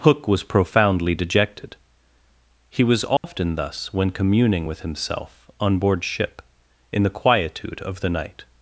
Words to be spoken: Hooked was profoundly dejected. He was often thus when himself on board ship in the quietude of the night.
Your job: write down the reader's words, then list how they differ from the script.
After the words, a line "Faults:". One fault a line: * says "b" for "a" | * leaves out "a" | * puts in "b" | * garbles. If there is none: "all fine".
Hook was profoundly dejected. He was often thus when communing with himself on board ship in the quietude of the night.
Faults:
* says "Hook" for "Hooked"
* puts in "communing with"